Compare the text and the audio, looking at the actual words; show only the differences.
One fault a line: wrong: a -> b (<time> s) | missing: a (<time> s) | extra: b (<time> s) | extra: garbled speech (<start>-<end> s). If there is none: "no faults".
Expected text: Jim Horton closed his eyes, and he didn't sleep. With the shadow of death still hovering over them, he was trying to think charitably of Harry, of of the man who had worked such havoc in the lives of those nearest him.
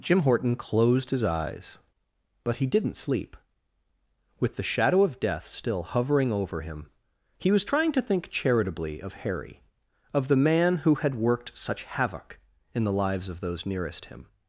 wrong: and -> but (2.4 s)
wrong: them -> him (6.6 s)
missing: of (10.3 s)